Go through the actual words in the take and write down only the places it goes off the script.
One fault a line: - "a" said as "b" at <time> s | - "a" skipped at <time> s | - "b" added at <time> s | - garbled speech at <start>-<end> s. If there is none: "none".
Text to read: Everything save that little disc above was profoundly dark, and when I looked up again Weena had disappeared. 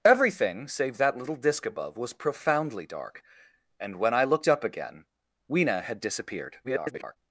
- garbled speech at 6.6-7.2 s